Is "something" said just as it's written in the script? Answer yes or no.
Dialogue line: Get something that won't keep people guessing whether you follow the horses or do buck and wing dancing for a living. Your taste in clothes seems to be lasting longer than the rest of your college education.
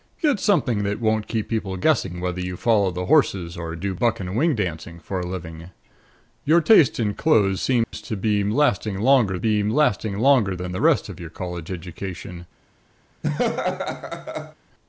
yes